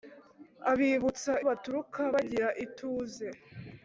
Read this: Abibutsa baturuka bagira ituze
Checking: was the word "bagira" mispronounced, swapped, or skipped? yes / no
no